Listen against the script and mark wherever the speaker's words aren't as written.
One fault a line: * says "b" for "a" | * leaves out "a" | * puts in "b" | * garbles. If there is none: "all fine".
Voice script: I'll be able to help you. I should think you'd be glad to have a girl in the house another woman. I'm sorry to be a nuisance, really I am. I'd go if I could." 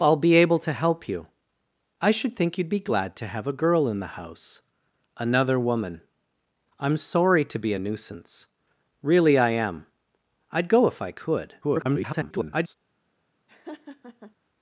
* garbles